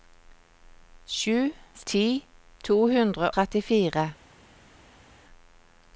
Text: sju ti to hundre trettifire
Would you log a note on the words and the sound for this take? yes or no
no